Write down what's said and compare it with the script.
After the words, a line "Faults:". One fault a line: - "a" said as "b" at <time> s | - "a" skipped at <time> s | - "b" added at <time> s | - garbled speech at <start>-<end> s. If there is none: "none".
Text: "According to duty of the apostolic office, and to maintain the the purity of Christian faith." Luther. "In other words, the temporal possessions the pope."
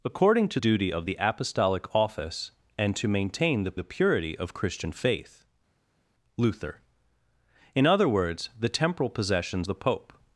"According to duty of the apostolic office, and to maintain the the purity of Christian faith." Luther. "In other words, the temporal possessions the pope."
Faults:
none